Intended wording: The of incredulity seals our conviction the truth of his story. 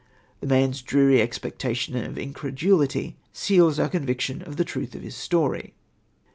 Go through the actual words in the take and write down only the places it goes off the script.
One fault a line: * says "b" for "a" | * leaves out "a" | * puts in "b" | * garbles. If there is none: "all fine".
* puts in "man's dreary expectation"
* puts in "of"